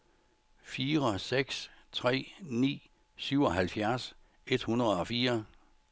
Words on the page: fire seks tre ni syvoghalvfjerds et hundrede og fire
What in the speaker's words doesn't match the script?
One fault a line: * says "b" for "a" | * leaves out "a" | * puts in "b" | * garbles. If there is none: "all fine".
all fine